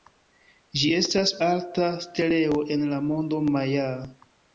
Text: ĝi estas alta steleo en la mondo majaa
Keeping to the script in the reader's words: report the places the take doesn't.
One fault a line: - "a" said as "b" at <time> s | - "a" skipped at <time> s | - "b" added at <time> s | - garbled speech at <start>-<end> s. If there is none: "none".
none